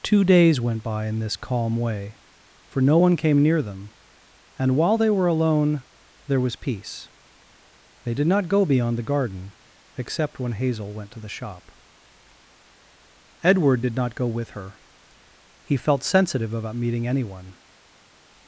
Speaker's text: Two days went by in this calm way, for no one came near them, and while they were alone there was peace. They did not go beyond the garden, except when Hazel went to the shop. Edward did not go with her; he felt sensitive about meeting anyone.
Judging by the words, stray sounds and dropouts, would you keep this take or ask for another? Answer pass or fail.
pass